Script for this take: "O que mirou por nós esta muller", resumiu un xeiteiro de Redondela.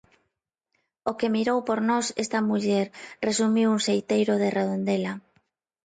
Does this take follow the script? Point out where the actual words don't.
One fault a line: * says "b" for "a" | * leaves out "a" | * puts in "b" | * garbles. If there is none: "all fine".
all fine